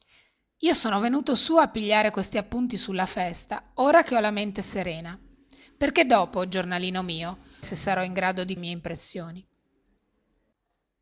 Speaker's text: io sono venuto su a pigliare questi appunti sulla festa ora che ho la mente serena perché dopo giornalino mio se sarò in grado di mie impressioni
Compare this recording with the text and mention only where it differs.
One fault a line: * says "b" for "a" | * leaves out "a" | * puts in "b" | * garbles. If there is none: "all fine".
all fine